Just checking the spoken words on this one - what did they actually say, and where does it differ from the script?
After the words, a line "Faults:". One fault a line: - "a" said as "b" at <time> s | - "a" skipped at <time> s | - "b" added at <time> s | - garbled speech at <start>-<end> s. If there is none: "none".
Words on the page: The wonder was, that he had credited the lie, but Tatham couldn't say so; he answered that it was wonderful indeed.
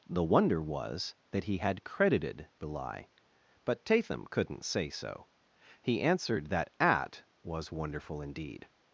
The wonder was, that he had credited the lie, but Tatham couldn't say so; he answered that at was wonderful indeed.
Faults:
- "it" said as "at" at 6.8 s